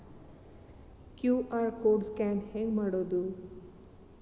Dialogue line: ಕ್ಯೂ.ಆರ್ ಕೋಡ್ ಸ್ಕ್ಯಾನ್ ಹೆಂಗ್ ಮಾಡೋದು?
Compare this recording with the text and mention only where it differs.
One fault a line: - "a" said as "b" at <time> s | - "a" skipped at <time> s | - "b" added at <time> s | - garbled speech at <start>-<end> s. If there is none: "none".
none